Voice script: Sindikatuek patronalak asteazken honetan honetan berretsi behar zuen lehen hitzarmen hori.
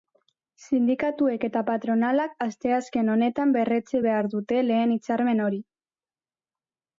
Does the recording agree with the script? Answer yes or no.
no